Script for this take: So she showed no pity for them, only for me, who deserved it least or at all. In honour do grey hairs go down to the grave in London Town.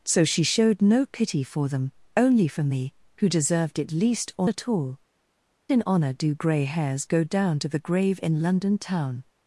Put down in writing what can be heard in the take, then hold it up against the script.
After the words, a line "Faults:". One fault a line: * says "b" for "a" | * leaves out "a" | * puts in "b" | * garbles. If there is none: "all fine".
So she showed no pity for them, only for me, who deserved it least or at all. In honour do grey hairs go down to the grave in London Town.
Faults:
all fine